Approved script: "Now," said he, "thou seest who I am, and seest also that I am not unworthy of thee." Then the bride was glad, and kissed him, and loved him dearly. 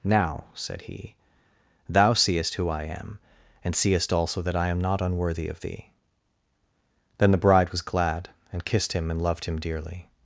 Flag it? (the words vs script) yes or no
no